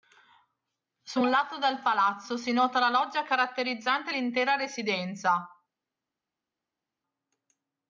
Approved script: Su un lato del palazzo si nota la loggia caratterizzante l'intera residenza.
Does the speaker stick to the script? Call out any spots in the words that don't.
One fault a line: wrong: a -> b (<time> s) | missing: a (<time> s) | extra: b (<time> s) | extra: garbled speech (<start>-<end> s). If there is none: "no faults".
no faults